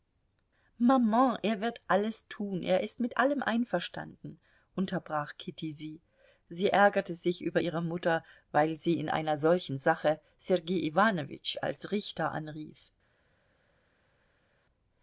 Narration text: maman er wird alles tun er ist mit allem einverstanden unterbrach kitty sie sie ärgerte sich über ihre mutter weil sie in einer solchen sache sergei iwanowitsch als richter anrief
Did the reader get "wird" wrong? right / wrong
right